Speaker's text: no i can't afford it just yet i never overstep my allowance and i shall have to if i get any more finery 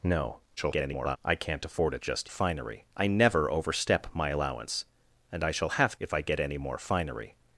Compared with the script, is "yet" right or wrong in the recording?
wrong